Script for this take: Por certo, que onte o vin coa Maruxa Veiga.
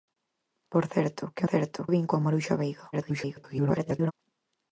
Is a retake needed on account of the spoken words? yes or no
yes